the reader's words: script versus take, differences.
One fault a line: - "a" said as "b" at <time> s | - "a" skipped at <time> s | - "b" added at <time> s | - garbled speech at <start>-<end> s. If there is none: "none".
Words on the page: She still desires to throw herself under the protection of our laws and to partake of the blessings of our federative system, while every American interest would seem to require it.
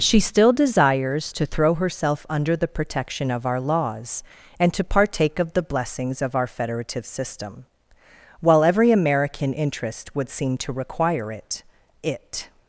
- "it" added at 12.0 s